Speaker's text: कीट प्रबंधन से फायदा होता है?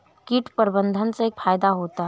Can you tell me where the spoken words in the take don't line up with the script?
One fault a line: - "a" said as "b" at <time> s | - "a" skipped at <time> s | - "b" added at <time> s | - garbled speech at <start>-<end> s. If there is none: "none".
none